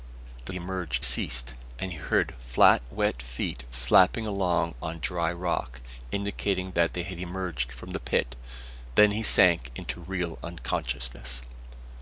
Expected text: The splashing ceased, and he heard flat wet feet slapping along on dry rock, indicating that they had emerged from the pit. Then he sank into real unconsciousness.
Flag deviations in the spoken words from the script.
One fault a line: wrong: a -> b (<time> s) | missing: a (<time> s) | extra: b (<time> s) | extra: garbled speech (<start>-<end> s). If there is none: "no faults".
wrong: splashing -> emerged (0.5 s)